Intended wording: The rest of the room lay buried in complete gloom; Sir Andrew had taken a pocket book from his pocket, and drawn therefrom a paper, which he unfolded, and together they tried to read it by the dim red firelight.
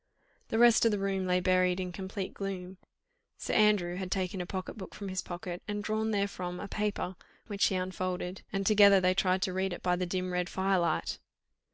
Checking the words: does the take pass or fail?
pass